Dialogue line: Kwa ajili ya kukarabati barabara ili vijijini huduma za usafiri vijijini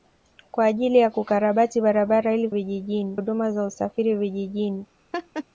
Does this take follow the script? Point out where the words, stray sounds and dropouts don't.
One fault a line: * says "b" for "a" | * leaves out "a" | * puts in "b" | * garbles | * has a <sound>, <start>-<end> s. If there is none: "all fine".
* has a laugh, 5.1-5.4 s